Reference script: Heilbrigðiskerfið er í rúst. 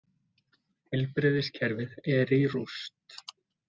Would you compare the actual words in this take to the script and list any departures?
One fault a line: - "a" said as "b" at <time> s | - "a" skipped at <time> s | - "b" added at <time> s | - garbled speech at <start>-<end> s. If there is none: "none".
none